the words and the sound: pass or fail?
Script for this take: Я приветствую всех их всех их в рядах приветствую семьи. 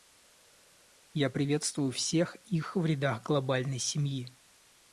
fail